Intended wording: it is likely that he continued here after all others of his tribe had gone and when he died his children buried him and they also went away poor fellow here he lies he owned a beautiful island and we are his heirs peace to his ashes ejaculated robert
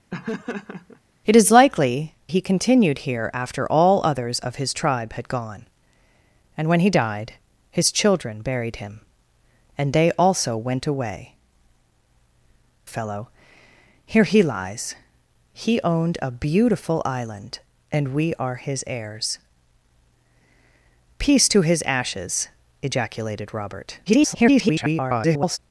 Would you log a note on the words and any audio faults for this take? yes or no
yes